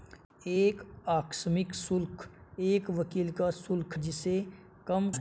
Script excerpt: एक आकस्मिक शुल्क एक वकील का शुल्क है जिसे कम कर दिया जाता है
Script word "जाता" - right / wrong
wrong